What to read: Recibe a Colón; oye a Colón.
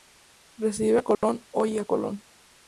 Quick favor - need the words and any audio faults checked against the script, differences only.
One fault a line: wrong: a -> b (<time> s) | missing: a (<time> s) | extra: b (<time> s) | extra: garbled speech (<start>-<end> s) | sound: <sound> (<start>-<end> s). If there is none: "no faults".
sound: dropout (1.1-1.2 s)